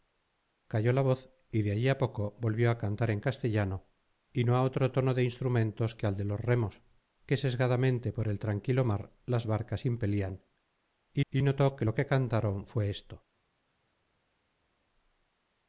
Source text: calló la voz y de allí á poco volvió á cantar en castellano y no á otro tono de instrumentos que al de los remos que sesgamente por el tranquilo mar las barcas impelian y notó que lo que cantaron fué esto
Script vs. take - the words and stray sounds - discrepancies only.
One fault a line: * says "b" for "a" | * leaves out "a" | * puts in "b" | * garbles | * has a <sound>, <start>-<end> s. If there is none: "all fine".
* puts in "y"